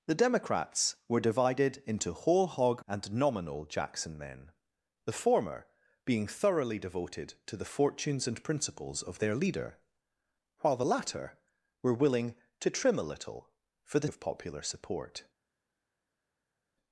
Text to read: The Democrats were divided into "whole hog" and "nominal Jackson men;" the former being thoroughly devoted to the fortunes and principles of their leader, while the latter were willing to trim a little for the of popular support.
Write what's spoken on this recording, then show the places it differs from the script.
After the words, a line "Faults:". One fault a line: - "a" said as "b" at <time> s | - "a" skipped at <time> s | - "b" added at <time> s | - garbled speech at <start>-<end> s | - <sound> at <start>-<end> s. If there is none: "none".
The Democrats were divided into "whole hog" and "nominal Jackson men;" the former being thoroughly devoted to the fortunes and principles of their leader, while the latter were willing to trim a little for the of popular support.
Faults:
none